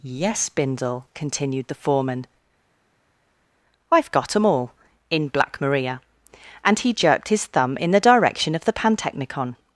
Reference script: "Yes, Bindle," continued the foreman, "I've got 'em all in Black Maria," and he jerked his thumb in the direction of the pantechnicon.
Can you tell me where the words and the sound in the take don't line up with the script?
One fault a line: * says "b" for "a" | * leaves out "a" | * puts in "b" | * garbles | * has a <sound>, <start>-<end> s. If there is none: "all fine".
all fine